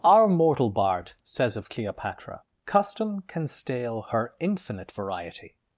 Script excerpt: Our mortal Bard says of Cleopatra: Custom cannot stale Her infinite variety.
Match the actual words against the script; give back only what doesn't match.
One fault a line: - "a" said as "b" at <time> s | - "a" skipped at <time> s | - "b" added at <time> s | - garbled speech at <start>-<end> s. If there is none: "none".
- "cannot" said as "can" at 3.3 s